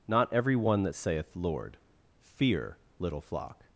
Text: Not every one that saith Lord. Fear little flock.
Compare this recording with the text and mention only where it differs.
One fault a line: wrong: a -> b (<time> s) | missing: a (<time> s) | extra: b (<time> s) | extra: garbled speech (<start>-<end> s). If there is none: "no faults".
no faults